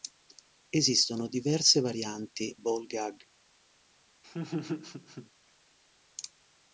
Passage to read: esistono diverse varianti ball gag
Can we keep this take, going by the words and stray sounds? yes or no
no